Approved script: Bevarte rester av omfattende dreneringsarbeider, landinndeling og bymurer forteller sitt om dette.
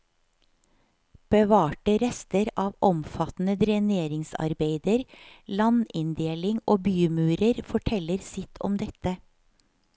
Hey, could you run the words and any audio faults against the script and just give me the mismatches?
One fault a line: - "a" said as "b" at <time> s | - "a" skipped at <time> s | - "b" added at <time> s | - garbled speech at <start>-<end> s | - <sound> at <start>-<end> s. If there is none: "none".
none